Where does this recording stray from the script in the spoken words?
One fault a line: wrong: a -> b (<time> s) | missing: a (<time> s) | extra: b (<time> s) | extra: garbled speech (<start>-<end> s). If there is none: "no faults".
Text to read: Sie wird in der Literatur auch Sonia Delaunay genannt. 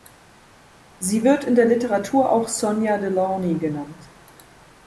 no faults